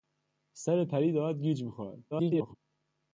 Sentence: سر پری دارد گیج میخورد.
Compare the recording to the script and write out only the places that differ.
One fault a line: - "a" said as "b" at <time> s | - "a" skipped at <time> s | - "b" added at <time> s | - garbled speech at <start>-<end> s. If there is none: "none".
- garbled speech at 2.1-2.6 s